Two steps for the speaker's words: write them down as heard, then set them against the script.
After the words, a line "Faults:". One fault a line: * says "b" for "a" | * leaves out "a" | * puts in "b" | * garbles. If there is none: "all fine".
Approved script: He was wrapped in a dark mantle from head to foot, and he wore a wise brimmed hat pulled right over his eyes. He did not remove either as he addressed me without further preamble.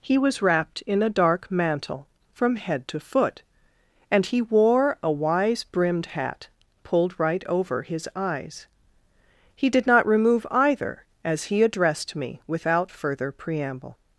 He was wrapped in a dark mantle from head to foot, and he wore a wise brimmed hat pulled right over his eyes. He did not remove either as he addressed me without further preamble.
Faults:
all fine